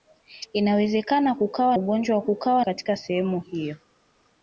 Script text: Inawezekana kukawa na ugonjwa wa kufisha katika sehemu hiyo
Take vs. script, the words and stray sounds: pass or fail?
fail